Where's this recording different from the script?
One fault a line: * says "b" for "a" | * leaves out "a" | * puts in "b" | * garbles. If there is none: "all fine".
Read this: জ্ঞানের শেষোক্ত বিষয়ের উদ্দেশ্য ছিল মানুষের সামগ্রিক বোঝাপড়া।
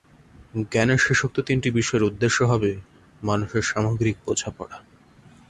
* puts in "তিনটি"
* says "হবে" for "ছিল"